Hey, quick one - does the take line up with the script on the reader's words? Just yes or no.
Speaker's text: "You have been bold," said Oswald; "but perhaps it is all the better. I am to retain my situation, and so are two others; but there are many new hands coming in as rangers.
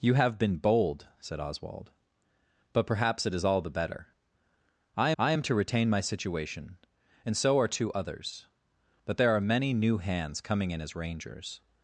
no